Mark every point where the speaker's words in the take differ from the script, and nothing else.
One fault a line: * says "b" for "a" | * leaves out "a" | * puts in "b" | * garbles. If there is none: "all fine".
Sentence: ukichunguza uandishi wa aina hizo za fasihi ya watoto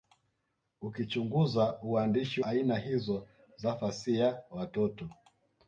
* leaves out "wa"